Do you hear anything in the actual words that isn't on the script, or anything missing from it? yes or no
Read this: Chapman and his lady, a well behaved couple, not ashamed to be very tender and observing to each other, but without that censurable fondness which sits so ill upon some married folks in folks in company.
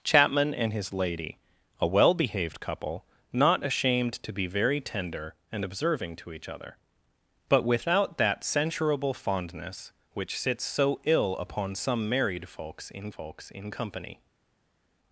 no